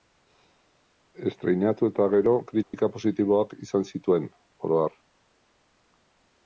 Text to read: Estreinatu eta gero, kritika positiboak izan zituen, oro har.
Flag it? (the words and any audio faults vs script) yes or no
yes